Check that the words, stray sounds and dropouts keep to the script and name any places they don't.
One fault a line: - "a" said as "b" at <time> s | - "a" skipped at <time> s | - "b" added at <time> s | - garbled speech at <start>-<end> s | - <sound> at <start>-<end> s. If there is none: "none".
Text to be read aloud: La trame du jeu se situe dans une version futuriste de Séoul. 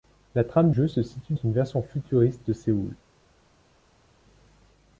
- "du" skipped at 0.7 s
- "dans" skipped at 1.3 s